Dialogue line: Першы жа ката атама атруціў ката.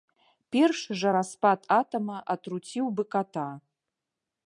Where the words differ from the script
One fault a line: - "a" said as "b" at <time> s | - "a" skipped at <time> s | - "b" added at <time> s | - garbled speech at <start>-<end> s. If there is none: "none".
- "ката" said as "распад" at 1.2 s
- "бы" added at 3.0 s